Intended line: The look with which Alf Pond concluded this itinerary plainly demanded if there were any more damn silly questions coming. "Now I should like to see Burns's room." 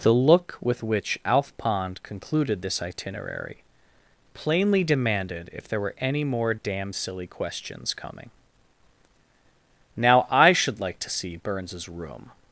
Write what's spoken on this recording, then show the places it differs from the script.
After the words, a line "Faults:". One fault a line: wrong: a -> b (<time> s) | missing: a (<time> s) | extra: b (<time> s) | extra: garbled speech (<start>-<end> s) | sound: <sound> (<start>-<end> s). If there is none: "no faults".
The look with which Alf Pond concluded this itinerary plainly demanded if there were any more damn silly questions coming. "Now I should like to see Burns's room."
Faults:
no faults